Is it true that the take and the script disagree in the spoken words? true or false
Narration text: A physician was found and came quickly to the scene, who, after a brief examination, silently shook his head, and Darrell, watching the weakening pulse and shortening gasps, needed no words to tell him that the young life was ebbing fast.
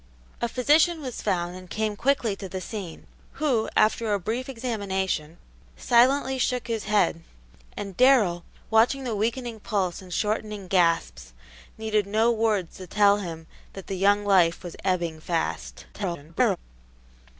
true